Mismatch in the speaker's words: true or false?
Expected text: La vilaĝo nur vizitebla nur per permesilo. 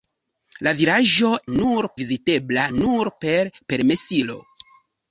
false